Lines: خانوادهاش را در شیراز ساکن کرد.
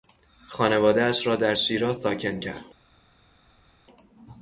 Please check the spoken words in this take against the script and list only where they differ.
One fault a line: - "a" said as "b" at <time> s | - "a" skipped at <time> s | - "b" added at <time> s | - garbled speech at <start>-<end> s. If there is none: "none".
none